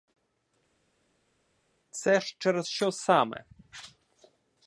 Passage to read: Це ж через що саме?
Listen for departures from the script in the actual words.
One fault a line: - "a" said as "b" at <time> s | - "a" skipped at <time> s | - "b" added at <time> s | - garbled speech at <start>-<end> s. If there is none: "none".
none